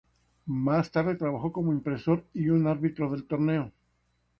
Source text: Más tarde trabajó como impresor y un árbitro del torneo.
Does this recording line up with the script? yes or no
yes